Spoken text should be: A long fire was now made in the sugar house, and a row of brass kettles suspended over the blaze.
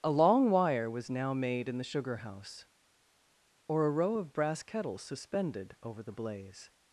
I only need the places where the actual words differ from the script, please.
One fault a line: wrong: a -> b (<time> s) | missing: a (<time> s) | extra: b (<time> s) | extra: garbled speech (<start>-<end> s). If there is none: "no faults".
wrong: fire -> wire (0.5 s)
wrong: and -> or (3.7 s)